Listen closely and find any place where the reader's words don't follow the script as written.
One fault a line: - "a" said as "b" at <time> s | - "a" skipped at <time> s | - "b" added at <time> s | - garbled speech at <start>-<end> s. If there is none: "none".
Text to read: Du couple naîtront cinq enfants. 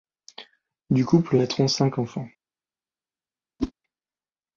none